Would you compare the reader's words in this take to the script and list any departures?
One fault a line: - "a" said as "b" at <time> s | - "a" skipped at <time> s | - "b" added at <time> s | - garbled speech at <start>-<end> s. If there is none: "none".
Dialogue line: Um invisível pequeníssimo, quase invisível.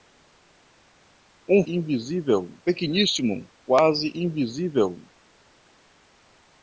none